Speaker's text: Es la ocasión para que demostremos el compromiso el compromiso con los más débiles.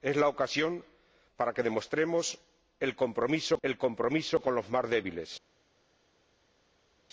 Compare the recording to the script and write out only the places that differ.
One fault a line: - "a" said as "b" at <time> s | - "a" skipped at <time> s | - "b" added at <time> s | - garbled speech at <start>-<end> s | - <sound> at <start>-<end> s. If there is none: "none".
none